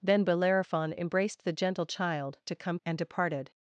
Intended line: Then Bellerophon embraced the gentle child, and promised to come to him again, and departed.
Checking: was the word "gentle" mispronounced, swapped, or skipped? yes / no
no